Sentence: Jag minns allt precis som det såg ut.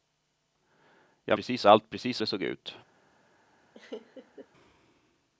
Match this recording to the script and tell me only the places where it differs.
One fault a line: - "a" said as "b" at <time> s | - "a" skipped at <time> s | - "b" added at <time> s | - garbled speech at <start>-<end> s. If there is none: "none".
- "minns" said as "precis" at 1.3 s
- "som" skipped at 2.2 s